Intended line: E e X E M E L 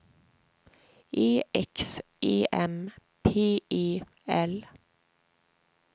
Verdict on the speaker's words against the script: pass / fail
fail